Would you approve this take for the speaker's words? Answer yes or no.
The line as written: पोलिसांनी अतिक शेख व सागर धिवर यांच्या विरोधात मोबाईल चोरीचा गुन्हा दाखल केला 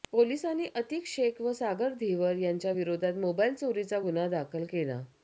yes